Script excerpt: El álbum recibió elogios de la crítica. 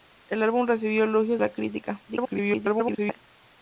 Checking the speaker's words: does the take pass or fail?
fail